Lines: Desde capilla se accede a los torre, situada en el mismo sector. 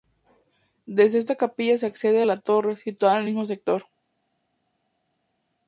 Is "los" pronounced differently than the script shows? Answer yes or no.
yes